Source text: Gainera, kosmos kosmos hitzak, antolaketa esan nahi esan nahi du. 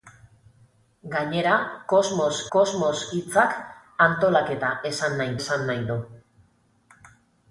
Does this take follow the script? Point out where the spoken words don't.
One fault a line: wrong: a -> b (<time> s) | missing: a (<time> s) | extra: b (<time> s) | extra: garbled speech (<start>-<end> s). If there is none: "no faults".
no faults